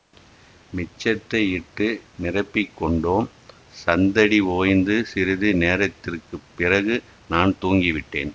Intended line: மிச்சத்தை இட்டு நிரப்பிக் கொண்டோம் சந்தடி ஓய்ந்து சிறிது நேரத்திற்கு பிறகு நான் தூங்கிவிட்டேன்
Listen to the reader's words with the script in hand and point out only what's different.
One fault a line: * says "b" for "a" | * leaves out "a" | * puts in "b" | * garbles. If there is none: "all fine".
all fine